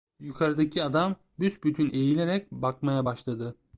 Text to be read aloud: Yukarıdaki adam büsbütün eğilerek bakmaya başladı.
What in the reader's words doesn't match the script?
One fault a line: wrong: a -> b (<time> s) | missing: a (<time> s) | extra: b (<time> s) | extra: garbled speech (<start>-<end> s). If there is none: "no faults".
no faults